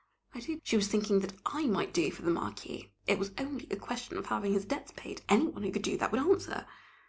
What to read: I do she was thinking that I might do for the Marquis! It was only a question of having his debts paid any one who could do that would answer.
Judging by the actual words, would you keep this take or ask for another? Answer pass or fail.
pass